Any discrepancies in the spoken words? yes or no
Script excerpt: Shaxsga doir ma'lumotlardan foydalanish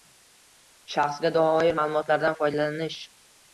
no